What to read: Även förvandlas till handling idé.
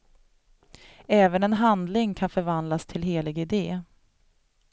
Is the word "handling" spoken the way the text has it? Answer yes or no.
no